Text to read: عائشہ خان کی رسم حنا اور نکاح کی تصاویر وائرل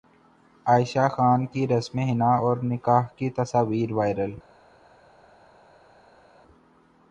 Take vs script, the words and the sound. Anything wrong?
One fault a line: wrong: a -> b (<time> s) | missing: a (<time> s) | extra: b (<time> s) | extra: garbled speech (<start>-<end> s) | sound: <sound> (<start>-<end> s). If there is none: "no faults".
no faults